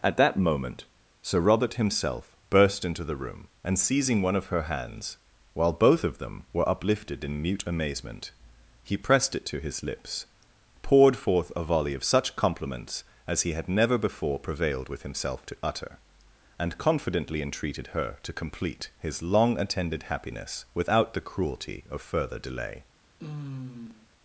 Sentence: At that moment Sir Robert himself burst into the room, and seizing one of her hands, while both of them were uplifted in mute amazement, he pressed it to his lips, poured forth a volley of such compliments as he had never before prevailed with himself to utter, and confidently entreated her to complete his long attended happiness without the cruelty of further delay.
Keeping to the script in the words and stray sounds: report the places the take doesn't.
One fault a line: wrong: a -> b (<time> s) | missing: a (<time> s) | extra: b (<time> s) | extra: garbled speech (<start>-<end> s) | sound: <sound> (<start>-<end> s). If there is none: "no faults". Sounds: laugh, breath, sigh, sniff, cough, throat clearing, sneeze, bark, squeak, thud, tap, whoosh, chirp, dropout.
sound: sigh (23.2-24.1 s)